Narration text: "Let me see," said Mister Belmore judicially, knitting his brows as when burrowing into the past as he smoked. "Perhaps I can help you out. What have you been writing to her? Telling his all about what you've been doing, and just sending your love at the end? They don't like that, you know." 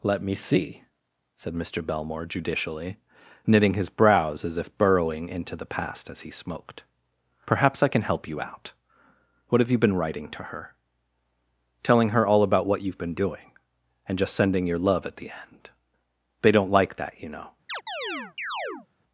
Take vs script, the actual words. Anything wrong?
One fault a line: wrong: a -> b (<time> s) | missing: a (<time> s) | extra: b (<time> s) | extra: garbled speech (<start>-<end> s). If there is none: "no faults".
wrong: when -> if (4.6 s)
wrong: his -> her (12.1 s)